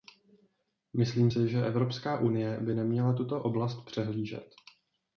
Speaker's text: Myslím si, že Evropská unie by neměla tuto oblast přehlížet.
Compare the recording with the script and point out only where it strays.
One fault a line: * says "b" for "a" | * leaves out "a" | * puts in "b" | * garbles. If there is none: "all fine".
all fine